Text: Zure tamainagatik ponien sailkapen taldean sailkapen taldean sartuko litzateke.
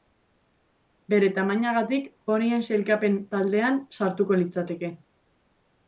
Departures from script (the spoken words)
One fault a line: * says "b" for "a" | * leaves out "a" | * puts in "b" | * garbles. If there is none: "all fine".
* says "Bere" for "Zure"
* leaves out "sailkapen taldean"